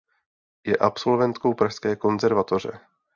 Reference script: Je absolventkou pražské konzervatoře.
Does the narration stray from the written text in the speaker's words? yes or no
no